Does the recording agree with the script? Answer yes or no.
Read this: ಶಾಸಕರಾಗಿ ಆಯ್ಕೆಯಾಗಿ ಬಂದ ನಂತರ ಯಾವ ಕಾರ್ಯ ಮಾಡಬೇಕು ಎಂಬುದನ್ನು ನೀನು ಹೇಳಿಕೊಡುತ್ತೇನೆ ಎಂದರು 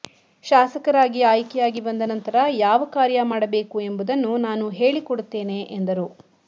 no